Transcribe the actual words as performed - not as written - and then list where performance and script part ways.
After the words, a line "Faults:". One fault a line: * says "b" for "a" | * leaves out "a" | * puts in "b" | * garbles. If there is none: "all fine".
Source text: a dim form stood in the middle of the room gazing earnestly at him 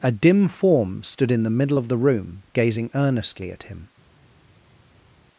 a dim form stood in the middle of the room gazing earnestly at him
Faults:
all fine